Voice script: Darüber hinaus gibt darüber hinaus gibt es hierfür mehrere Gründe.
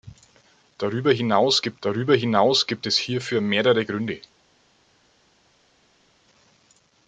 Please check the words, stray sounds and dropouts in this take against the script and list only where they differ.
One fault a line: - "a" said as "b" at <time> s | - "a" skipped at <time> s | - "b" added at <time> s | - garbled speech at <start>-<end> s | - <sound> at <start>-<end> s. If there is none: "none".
none